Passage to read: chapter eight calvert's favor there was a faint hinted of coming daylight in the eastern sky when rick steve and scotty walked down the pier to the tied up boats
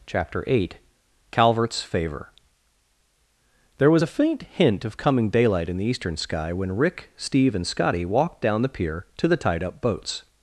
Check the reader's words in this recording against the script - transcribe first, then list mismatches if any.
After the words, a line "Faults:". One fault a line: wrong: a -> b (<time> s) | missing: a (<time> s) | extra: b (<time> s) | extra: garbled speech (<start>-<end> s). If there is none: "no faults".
chapter eight calvert's favor there was a faint hint of coming daylight in the eastern sky when rick steve and scotty walked down the pier to the tied up boats
Faults:
wrong: hinted -> hint (4.4 s)